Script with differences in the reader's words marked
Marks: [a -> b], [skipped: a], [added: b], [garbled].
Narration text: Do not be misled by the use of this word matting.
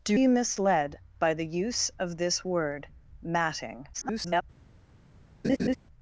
Do [skipped: not] be misled by the use of this word matting. [garbled]